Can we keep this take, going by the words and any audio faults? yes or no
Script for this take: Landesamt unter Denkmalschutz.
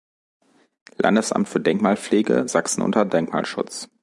no